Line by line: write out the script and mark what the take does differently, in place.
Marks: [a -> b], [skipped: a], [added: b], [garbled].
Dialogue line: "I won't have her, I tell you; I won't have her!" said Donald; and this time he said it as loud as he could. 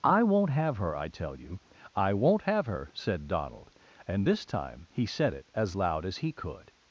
"I won't have her, I tell you; I won't have her!" said Donald; and this time he said it as loud as he could.